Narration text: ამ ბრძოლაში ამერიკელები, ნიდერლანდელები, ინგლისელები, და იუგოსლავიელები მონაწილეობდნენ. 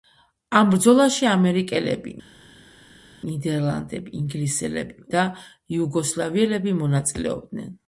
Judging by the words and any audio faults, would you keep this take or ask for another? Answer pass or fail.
pass